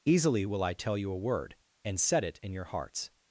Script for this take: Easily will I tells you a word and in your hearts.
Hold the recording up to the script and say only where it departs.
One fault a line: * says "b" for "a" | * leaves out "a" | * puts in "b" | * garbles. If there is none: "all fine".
* says "tell" for "tells"
* puts in "set it"